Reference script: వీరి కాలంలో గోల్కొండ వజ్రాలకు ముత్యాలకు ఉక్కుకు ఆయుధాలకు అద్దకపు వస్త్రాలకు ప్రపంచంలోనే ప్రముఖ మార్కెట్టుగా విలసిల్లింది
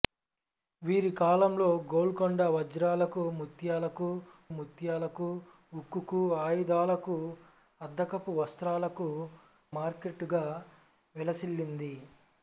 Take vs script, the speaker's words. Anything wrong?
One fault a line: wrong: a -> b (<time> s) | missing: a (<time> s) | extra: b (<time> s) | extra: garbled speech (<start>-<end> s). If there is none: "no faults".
extra: ముత్యాలకు (4.5 s)
missing: ప్రపంచంలోనే ప్రముఖ (9.1 s)